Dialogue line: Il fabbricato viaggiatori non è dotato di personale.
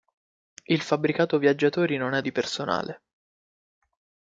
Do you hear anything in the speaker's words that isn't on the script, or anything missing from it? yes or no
yes